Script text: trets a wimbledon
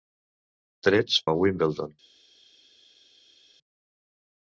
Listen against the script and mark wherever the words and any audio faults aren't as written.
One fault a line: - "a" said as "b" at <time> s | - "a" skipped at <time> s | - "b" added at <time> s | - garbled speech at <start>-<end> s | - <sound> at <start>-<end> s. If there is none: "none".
none